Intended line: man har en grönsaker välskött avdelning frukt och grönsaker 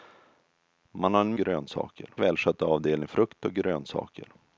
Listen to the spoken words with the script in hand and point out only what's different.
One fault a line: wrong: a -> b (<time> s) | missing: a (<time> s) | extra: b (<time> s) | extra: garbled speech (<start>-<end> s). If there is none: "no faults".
no faults